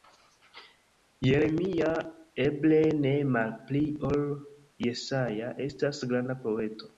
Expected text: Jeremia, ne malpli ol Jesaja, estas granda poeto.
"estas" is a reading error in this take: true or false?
false